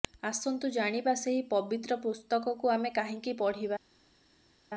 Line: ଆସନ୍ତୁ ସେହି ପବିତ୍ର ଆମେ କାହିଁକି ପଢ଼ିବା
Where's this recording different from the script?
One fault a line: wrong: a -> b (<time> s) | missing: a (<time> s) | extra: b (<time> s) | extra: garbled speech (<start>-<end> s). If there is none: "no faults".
extra: ଜାଣିବା (0.7 s)
extra: ପୁସ୍ତକକୁ (2.0 s)